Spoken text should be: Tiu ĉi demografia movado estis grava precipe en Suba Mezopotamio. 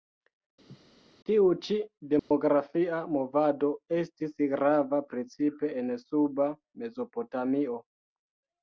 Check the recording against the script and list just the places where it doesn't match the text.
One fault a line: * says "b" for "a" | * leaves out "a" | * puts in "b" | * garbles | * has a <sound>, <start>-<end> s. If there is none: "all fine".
* has a laugh, 0.7-0.8 s
* has a dropout, 2.2-2.3 s